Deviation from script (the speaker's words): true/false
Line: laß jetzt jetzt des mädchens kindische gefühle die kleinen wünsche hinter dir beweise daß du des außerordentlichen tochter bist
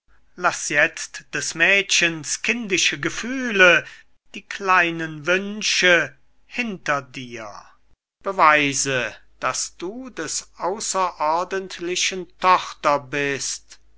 true